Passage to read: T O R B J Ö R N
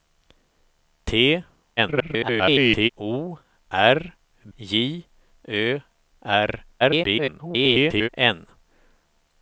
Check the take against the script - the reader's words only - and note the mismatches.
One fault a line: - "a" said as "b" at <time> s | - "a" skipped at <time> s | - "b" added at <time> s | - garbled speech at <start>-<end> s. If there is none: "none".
- garbled speech at 1.8-2.9 s
- "B" skipped at 4.2 s
- garbled speech at 6.8-8.1 s